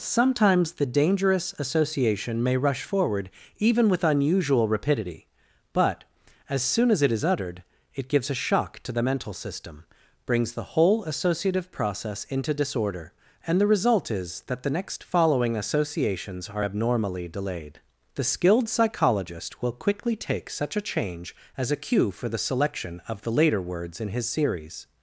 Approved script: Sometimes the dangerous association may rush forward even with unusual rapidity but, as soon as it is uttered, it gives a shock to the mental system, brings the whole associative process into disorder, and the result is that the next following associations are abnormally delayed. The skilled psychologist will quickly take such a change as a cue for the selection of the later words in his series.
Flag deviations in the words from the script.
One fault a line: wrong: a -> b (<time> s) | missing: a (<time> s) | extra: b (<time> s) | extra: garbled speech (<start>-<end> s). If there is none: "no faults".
no faults